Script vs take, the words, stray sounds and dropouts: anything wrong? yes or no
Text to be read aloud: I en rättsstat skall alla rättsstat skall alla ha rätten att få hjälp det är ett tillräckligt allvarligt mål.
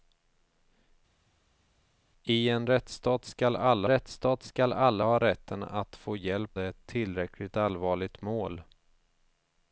no